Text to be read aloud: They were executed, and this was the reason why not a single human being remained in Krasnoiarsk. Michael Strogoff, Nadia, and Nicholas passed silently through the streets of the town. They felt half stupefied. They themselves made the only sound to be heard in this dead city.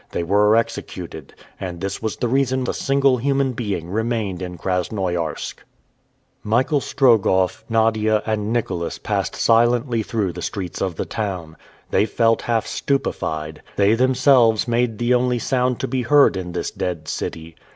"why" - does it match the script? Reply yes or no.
no